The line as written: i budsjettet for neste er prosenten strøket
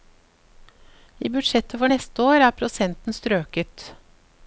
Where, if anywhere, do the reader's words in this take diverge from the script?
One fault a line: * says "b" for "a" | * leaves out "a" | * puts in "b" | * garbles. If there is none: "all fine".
* puts in "år"